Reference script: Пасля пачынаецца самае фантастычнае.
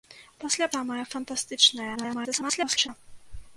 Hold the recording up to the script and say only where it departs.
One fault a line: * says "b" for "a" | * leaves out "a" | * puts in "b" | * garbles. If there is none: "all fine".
* leaves out "пачынаецца"
* garbles